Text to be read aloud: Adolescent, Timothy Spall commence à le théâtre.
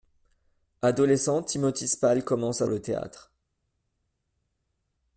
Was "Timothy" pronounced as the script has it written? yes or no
yes